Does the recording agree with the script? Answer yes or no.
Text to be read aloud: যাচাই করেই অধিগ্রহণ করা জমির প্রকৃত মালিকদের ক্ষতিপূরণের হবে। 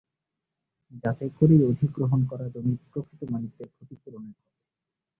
yes